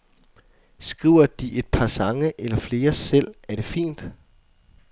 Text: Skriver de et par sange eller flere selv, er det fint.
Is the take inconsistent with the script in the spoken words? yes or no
no